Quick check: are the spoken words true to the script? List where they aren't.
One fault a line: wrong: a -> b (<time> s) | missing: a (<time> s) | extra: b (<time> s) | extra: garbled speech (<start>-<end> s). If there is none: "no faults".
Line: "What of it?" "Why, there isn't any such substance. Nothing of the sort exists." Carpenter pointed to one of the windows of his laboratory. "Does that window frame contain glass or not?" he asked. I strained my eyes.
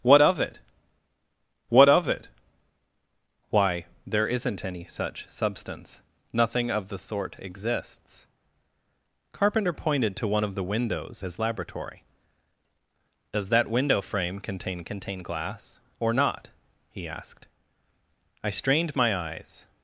extra: what of it (1.7 s)
missing: of (11.2 s)
extra: contain (14.8 s)